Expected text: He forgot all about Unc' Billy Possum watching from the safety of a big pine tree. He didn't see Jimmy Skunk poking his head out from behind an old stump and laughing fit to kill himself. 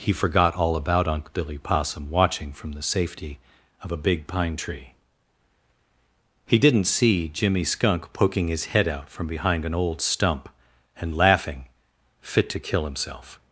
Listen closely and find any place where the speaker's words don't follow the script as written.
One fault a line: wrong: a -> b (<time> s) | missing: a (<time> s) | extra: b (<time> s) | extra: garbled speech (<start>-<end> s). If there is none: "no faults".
no faults